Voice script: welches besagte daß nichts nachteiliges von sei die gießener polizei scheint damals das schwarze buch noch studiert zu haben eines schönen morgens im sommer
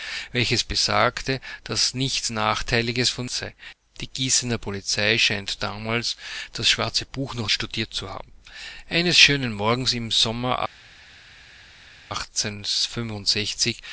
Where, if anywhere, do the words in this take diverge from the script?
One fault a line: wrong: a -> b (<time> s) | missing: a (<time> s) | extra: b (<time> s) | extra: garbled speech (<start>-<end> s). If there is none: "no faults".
no faults